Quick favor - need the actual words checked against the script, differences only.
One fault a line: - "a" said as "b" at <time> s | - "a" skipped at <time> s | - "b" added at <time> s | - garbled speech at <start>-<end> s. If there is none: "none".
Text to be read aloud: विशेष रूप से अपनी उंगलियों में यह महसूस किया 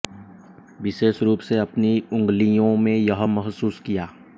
none